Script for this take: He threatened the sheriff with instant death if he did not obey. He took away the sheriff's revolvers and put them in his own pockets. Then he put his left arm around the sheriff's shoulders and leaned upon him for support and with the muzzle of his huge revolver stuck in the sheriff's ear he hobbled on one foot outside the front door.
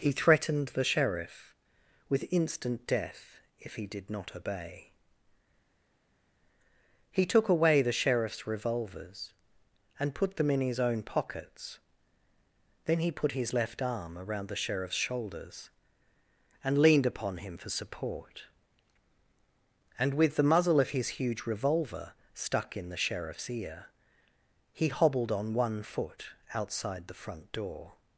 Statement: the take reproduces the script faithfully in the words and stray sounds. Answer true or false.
true